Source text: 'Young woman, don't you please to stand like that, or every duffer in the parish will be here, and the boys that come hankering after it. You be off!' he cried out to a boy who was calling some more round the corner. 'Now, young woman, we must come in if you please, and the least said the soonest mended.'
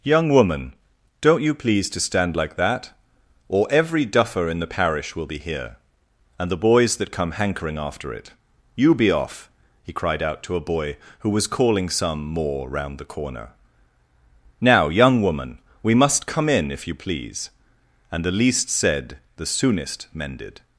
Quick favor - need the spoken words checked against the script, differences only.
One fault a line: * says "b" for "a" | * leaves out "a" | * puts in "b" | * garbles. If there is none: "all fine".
all fine